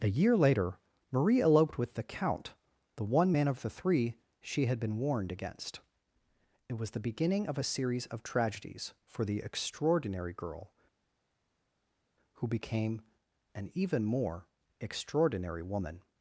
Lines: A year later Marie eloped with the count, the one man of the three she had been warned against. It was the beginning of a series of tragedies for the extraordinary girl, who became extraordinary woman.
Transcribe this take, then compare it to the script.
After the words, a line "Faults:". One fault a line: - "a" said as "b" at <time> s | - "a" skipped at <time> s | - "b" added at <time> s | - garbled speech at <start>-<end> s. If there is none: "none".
A year later Marie eloped with the count, the one man of the three she had been warned against. It was the beginning of a series of tragedies for the extraordinary girl, who became an even more extraordinary woman.
Faults:
- "an even more" added at 13.6 s